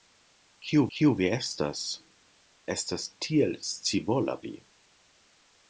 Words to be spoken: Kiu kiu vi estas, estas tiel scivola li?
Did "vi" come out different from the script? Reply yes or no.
no